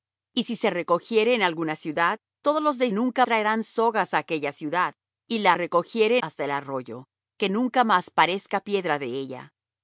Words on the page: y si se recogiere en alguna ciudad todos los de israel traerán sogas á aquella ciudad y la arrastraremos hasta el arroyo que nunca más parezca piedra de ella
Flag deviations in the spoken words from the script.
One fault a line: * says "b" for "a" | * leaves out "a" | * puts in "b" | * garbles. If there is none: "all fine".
* says "nunca" for "israel"
* says "recogiere" for "arrastraremos"